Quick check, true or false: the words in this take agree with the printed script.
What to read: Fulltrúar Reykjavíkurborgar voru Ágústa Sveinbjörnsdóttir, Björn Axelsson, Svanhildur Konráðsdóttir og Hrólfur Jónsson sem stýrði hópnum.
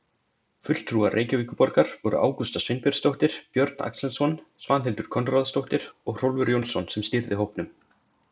true